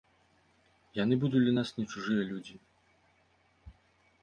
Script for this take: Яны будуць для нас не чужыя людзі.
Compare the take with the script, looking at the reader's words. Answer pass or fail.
pass